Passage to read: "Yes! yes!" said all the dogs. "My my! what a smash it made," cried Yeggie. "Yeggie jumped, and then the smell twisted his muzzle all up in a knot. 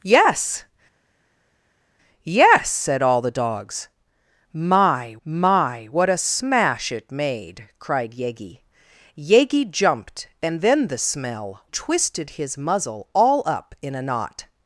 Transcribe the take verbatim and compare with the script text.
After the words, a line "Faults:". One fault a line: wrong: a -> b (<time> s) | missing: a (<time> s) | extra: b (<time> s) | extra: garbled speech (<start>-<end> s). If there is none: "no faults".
"Yes! yes!" said all the dogs. "My my! what a smash it made," cried Yeggie. "Yeggie jumped, and then the smell twisted his muzzle all up in a knot.
Faults:
no faults